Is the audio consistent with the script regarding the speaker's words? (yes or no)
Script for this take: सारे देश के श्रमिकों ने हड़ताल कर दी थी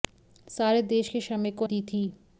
no